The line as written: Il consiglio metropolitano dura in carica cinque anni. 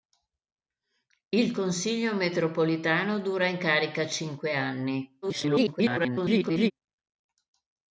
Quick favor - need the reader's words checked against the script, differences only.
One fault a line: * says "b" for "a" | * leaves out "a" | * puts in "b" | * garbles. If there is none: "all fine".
* garbles